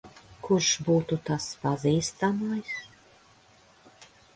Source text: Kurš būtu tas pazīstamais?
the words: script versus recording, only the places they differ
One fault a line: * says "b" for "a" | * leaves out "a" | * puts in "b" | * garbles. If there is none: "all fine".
all fine